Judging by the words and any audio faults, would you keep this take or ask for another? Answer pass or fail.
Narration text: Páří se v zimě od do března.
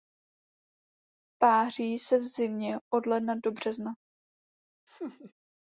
fail